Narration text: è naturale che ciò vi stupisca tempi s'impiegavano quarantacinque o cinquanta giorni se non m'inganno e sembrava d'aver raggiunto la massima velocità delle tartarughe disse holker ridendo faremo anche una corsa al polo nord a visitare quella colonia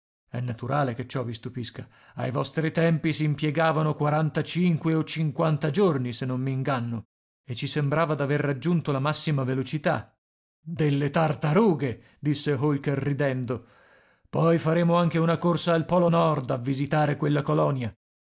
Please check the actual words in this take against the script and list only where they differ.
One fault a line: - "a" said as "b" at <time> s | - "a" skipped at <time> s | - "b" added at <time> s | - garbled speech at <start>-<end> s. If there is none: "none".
- "ai vostri" added at 2.1 s
- "ci" added at 7.5 s
- "poi" added at 14.3 s